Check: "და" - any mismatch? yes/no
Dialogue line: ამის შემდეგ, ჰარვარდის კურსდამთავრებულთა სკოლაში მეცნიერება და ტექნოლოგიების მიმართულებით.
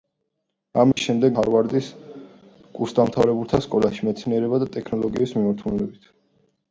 no